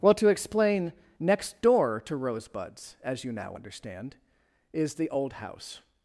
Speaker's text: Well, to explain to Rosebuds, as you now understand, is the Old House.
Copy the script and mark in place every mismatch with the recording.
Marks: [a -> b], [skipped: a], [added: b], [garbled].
Well, to explain [added: next door] to Rosebuds, as you now understand, is the Old House.